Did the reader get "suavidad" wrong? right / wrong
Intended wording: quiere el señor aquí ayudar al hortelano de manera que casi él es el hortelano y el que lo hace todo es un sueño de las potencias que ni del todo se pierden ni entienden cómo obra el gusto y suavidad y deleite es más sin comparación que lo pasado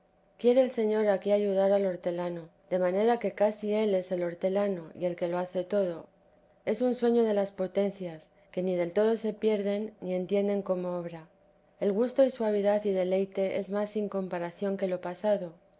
right